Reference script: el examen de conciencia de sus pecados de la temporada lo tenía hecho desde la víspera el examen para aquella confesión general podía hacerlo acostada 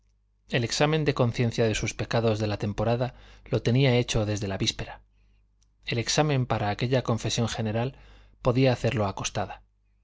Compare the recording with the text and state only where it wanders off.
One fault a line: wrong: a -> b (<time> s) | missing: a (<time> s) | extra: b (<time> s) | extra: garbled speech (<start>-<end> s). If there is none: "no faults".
no faults